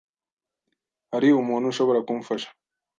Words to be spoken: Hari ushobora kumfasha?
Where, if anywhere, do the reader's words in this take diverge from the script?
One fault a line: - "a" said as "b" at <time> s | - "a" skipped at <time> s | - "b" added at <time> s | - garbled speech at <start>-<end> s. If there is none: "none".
- "umuntu" added at 1.4 s